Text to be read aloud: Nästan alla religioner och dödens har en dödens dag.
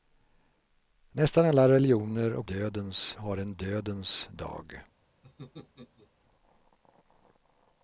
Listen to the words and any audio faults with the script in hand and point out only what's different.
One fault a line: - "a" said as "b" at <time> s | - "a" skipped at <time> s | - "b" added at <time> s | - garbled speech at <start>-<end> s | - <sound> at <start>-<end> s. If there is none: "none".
- laugh at 5.2-6.1 s